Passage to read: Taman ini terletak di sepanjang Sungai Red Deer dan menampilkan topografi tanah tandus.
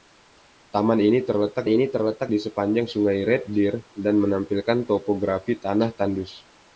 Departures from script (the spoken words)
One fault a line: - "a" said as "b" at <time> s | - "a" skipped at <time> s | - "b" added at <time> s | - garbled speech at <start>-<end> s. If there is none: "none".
- "ini terletak" added at 1.6 s